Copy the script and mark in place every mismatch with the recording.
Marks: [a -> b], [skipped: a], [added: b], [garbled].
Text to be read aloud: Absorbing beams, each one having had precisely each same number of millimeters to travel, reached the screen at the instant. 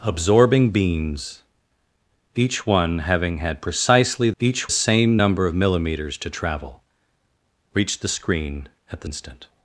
Absorbing beams, each one having had precisely each same number of millimeters to travel, reached the screen at the instant.